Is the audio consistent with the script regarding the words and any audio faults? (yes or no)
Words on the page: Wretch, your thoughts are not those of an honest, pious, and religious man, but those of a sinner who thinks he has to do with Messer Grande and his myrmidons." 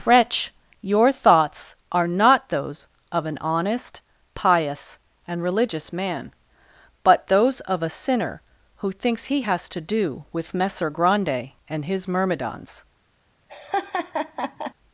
no